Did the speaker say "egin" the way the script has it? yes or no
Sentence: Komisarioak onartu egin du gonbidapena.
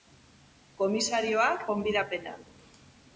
no